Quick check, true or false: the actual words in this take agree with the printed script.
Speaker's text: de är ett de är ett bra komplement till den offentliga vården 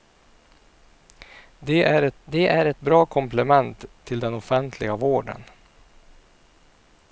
true